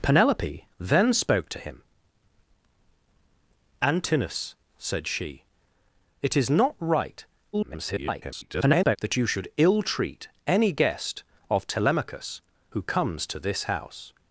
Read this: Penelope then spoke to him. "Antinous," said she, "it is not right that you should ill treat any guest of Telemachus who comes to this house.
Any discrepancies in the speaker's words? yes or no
yes